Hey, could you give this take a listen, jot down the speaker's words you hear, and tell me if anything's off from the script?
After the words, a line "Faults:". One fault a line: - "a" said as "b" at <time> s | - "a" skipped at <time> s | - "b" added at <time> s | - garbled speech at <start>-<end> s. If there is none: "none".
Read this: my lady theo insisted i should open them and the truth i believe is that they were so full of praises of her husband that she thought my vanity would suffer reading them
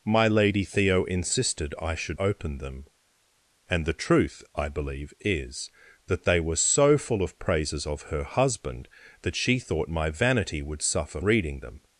my lady theo insisted i should open them and the truth i believe is that they were so full of praises of her husband that she thought my vanity would suffer reading them
Faults:
none